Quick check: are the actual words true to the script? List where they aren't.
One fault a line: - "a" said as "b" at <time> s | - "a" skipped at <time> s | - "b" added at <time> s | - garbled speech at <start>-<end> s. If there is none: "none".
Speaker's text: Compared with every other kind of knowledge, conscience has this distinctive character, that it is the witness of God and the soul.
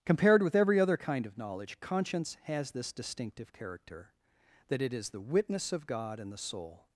none